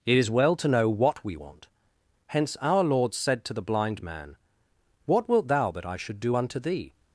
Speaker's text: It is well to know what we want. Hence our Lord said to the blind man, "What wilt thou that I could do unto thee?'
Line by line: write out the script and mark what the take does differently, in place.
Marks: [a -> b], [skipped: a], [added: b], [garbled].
It is well to know what we want. Hence our Lord said to the blind man, "What wilt thou that I [could -> should] do unto thee?'